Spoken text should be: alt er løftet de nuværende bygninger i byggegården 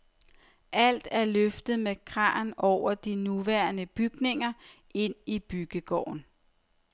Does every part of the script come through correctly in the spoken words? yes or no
no